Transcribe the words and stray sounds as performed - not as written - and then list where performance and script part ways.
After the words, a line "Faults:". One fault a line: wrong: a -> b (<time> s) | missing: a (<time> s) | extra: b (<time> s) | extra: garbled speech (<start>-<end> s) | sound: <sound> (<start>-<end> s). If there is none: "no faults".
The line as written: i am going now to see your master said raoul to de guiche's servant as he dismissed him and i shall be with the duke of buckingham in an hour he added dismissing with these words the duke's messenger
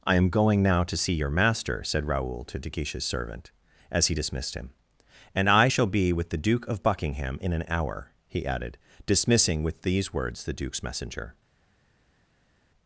i am going now to see your master said raoul to de guiche's servant as he dismissed him and i shall be with the duke of buckingham in an hour he added dismissing with these words the duke's messenger
Faults:
no faults